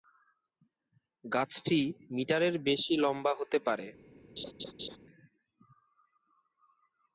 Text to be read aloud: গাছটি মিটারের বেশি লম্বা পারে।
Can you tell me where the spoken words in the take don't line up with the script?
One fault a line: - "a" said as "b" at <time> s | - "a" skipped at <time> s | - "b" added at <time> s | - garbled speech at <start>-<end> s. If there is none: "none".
- "হতে" added at 3.4 s